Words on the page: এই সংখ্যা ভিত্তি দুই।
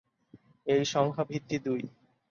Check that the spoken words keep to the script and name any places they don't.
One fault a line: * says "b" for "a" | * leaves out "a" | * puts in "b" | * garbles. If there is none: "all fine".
all fine